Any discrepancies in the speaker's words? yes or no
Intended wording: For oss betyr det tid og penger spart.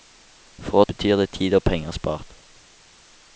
yes